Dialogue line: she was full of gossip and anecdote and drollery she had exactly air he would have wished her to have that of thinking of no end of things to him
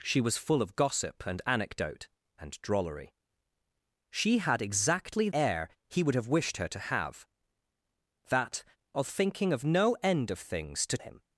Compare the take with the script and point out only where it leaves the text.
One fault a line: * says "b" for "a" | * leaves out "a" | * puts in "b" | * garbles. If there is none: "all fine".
all fine